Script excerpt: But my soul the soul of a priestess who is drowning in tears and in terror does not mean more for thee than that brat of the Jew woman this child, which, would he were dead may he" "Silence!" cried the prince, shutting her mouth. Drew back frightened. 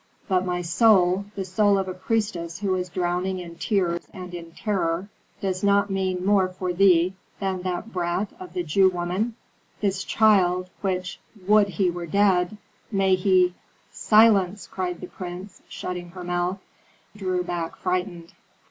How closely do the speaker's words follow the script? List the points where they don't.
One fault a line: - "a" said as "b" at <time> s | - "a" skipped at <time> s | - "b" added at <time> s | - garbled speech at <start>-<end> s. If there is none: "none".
none